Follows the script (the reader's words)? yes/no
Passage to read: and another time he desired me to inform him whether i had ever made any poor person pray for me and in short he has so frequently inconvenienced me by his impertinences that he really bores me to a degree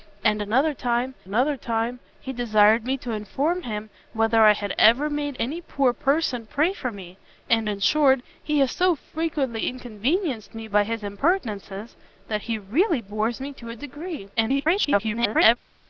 no